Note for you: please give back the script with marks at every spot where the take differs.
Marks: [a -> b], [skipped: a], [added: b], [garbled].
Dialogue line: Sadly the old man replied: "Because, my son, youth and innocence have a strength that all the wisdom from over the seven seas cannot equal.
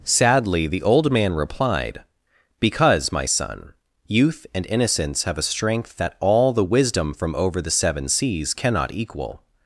Sadly the old man replied: "Because, my son, youth and innocence have a strength that all the wisdom from over the seven seas cannot equal.